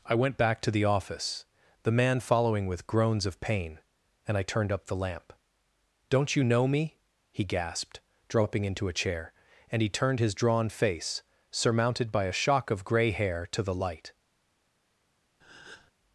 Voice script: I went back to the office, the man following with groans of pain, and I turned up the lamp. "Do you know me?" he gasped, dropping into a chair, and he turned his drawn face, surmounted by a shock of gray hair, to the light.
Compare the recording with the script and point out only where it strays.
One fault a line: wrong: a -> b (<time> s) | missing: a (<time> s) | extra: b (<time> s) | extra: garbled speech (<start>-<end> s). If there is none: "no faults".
wrong: Do -> Don't (6.1 s)